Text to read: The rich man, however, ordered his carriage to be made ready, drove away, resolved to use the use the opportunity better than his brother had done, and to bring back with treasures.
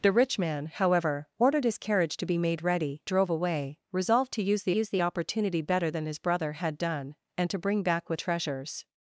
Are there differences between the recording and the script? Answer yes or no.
no